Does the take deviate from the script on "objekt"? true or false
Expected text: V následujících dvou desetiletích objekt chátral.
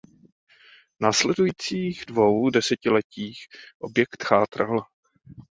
false